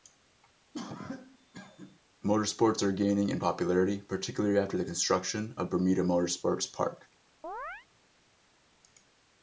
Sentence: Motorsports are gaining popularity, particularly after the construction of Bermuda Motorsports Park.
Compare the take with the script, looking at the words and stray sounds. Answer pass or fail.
fail